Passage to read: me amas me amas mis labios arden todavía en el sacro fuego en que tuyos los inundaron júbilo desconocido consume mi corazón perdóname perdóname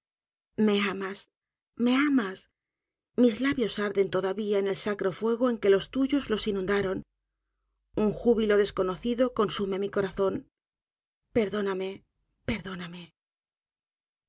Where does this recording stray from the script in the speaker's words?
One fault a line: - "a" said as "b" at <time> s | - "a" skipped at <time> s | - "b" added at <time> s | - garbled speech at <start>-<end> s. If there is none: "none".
- "los" added at 5.7 s
- "un" added at 8.0 s